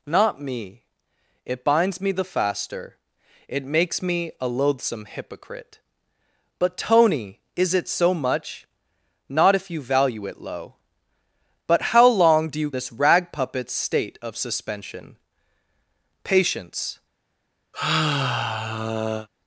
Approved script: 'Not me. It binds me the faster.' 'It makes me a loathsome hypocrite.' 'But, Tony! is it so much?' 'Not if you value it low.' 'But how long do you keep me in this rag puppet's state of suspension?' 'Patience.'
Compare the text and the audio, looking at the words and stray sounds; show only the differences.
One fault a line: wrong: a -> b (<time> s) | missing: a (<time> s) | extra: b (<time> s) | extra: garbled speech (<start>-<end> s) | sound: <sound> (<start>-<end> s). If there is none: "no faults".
missing: keep me in (12.7 s)
sound: sigh (17.7-19.3 s)